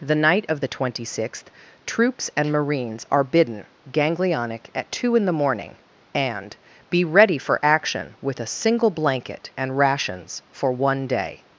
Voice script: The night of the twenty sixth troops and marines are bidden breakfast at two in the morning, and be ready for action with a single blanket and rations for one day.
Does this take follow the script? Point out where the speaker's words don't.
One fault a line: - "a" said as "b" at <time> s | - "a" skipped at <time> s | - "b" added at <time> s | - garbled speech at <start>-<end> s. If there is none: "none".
- "breakfast" said as "ganglionic" at 3.9 s